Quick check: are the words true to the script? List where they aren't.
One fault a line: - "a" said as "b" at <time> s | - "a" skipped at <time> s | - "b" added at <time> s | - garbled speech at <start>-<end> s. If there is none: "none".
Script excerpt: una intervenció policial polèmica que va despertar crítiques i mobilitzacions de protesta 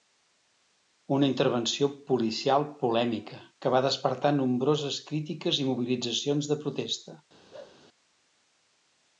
- "nombroses" added at 4.4 s